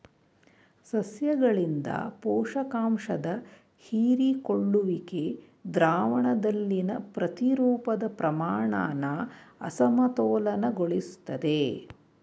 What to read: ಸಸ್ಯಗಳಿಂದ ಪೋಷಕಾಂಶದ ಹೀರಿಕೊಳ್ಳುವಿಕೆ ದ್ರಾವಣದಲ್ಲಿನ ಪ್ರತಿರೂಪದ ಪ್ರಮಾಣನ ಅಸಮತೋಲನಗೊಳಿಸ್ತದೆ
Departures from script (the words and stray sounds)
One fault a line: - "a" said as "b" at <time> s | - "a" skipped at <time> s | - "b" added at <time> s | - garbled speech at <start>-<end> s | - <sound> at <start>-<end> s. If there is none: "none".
none